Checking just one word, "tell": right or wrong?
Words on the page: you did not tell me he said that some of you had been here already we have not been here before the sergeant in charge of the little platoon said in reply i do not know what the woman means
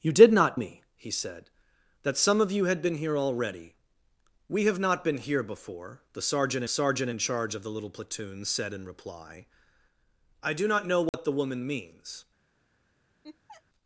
wrong